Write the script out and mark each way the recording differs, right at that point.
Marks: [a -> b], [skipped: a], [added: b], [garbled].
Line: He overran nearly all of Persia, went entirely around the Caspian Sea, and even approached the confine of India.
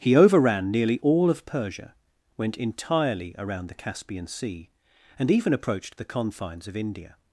He overran nearly all of Persia, went entirely around the Caspian Sea, and even approached the [confine -> confines] of India.